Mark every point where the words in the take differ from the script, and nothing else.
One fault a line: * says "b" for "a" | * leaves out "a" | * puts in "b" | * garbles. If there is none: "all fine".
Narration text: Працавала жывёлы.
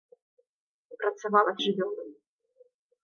all fine